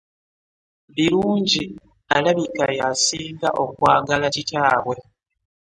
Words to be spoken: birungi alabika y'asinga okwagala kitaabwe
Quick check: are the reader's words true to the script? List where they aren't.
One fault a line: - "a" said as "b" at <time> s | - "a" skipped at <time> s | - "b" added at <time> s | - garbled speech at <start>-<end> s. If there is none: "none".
none